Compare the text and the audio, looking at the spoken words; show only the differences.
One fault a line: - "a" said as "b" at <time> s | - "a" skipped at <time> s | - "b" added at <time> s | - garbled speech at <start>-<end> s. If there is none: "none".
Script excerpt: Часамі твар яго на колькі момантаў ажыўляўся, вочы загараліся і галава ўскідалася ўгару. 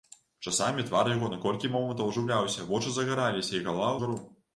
- "ўскідалася" skipped at 4.0 s